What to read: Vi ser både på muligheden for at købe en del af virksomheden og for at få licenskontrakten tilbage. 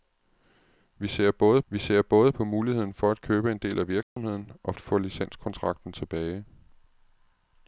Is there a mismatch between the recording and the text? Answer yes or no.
yes